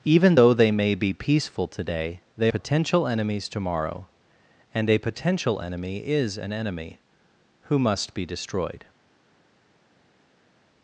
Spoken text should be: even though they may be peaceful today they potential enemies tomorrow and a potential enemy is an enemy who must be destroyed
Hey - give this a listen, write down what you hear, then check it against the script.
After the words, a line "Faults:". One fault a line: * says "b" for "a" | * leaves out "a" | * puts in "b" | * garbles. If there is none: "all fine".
even though they may be peaceful today they potential enemies tomorrow and a potential enemy is an enemy who must be destroyed
Faults:
all fine